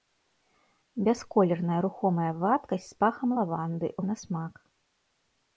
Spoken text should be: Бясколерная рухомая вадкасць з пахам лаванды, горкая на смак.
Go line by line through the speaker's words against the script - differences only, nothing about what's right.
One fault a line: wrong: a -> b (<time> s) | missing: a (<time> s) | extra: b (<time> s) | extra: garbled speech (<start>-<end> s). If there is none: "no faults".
missing: горкая (3.9 s)